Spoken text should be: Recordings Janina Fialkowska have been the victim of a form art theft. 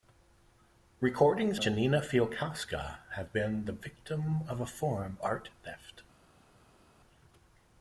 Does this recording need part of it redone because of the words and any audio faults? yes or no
no